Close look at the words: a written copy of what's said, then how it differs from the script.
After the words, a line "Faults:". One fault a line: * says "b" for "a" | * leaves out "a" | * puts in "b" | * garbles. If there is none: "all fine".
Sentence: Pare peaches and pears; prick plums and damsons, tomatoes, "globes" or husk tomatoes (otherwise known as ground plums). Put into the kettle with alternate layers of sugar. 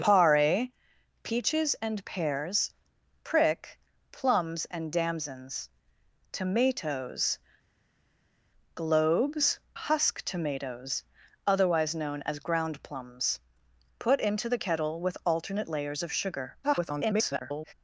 Pare peaches and pears; prick plums and damsons, tomatoes, "globes" husk tomatoes (otherwise known as ground plums). Put into the kettle with alternate layers of sugar. [garbled]
Faults:
* leaves out "or"
* garbles